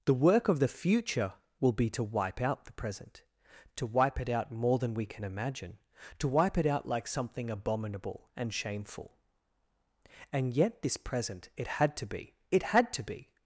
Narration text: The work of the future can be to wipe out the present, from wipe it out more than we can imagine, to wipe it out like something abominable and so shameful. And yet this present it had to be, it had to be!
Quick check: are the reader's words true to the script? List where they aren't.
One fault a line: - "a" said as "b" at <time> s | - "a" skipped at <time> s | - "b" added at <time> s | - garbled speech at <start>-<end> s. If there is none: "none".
- "can" said as "will" at 1.6 s
- "from" said as "to" at 3.8 s
- "so" skipped at 8.5 s